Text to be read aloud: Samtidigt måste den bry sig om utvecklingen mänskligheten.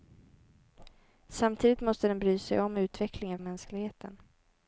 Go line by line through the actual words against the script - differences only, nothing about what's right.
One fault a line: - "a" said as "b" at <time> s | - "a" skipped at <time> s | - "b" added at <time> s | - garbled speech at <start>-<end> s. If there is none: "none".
none